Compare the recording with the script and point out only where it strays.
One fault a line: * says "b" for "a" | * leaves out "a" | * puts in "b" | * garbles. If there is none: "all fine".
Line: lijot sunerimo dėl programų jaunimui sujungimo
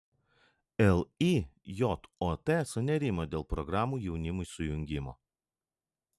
all fine